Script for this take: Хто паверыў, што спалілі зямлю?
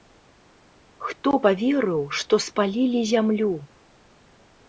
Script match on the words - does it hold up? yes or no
yes